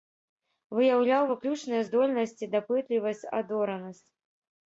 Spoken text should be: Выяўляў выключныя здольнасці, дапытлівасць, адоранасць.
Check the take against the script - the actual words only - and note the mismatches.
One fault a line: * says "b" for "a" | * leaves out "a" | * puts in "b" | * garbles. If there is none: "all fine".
all fine